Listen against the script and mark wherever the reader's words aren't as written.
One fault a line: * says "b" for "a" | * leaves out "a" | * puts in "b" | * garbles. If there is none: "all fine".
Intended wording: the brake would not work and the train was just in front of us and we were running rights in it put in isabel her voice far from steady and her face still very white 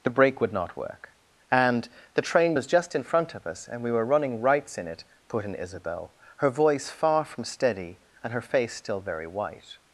all fine